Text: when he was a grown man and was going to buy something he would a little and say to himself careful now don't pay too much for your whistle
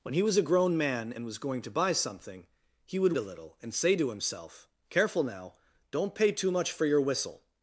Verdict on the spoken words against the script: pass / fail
pass